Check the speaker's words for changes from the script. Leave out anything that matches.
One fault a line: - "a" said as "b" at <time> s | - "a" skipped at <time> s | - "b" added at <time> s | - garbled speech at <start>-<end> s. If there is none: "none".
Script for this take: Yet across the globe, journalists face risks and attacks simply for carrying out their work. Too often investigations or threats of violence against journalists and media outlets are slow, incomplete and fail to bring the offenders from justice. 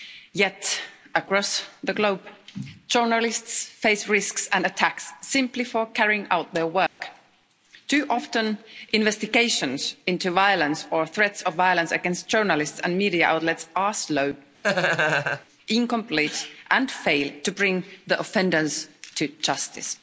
- "into violence" added at 10.1 s
- "from" said as "to" at 19.1 s